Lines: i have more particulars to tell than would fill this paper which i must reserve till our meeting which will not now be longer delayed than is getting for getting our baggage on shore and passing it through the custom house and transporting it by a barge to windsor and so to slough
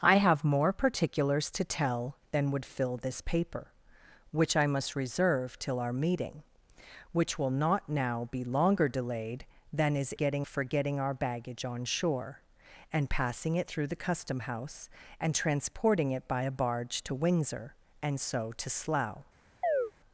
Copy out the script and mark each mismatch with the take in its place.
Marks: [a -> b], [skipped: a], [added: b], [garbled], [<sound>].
i have more particulars to tell than would fill this paper which i must reserve till our meeting which will not now be longer delayed than is getting for getting our baggage on shore and passing it through the custom house and transporting it by a barge to windsor and so to slough [chirp]